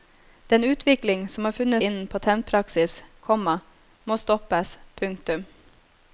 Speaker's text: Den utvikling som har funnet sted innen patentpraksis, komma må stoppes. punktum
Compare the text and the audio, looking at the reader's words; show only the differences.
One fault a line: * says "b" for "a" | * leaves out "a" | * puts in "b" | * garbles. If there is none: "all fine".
* leaves out "sted"